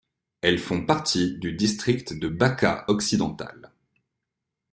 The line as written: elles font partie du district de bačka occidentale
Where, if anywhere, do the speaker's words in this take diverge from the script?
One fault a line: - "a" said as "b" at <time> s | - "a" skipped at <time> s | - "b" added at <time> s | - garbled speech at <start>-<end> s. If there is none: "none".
none